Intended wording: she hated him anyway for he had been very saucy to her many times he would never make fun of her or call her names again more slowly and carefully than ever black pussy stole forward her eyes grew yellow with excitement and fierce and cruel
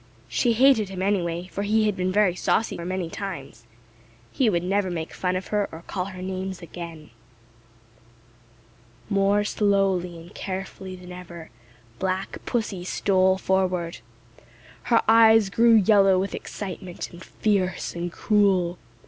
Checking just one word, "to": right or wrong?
wrong